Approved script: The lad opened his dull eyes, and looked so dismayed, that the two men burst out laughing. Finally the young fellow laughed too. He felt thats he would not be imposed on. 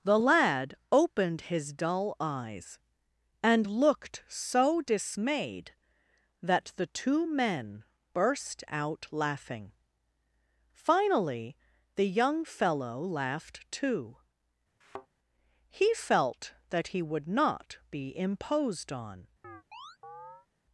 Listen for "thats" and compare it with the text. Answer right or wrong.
wrong